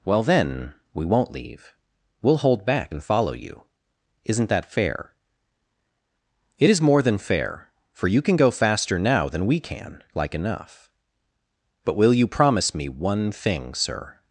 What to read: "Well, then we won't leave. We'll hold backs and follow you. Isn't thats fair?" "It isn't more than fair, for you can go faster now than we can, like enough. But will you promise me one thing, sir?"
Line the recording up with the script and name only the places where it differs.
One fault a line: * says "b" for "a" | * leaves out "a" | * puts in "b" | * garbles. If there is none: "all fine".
* says "back" for "backs"
* says "that" for "thats"
* says "is" for "isn't"